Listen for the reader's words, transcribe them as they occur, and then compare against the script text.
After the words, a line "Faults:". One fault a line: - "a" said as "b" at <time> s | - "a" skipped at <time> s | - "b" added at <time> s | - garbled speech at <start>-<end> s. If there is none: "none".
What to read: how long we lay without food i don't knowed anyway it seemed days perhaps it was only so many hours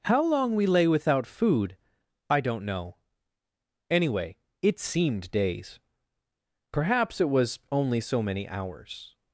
how long we lay without food i don't know anyway it seemed days perhaps it was only so many hours
Faults:
- "knowed" said as "know" at 2.6 s